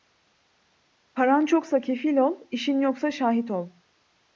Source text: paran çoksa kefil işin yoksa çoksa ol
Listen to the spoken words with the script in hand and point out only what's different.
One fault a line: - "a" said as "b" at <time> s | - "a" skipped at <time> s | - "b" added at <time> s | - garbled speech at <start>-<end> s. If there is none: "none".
- "ol" added at 2.2 s
- "çoksa" said as "şahit" at 3.1 s